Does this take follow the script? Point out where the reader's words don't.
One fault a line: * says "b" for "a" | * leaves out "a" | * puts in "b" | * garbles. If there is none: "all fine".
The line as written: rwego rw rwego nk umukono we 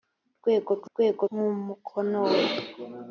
all fine